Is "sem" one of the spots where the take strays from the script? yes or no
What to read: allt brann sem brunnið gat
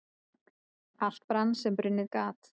no